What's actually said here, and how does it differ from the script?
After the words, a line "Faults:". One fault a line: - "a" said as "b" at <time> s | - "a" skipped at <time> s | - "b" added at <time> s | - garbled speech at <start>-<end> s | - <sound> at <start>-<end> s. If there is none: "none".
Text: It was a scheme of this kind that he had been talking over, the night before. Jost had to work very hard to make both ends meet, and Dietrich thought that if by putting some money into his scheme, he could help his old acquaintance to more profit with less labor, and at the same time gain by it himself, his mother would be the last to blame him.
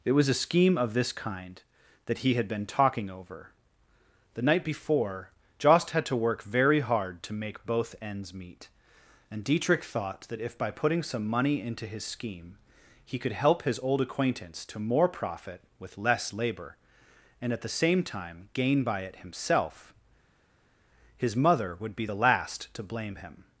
It was a scheme of this kind that he had been talking over, the night before. Jost had to work very hard to make both ends meet, and Dietrich thought that if by putting some money into his scheme, he could help his old acquaintance to more profit with less labor, and at the same time gain by it himself, his mother would be the last to blame him.
Faults:
none